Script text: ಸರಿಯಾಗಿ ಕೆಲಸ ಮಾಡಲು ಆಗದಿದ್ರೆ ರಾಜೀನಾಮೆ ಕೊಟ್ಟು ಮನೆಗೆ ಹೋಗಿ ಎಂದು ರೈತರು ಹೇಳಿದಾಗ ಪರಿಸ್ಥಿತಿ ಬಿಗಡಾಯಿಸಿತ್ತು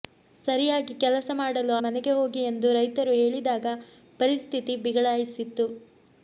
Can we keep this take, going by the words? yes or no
no